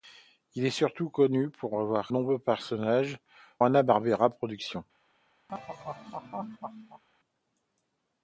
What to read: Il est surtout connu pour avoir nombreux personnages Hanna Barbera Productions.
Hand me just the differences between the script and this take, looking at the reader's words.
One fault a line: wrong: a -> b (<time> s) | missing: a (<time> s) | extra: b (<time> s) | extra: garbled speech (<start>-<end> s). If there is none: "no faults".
no faults